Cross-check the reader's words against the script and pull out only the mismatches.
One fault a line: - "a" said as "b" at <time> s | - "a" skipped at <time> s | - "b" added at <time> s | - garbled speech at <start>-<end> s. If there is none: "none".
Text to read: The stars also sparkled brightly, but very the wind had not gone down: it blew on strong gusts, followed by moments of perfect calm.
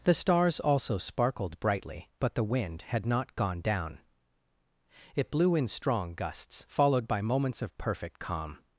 - "very" skipped at 2.3 s
- "on" said as "in" at 5.5 s